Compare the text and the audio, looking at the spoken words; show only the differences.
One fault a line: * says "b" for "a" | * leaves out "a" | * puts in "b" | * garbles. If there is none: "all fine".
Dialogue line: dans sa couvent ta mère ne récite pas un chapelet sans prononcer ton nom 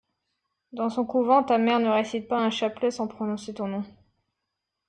* says "son" for "sa"